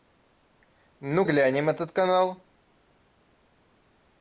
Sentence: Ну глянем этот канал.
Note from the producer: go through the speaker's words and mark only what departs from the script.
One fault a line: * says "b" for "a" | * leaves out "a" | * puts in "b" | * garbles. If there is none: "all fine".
all fine